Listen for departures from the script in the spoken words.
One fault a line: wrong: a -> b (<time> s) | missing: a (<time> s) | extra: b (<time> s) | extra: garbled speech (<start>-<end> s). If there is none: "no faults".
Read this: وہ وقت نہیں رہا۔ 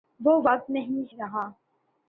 no faults